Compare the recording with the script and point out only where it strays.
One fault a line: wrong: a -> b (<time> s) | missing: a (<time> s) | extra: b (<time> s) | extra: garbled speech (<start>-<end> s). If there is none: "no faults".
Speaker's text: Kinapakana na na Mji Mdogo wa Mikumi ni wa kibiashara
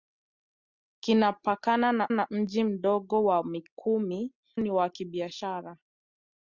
no faults